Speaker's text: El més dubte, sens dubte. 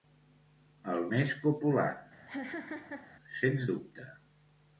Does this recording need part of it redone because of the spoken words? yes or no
yes